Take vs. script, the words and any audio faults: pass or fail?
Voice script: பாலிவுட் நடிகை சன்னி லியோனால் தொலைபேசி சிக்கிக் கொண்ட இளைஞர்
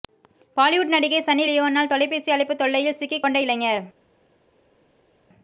fail